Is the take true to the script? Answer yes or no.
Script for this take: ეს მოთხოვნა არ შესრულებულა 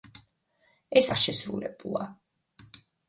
no